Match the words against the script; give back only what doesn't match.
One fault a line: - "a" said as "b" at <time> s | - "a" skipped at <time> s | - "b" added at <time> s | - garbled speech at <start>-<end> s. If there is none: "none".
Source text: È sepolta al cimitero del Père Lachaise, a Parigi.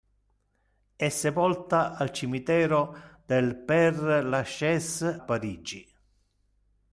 - "a" skipped at 5.2 s